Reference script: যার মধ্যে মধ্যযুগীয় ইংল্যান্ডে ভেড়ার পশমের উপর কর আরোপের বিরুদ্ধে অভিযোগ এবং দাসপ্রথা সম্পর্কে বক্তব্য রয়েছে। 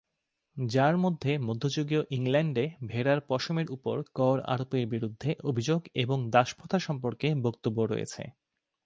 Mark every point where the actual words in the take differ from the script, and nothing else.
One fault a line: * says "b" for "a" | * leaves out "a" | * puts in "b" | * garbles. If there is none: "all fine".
all fine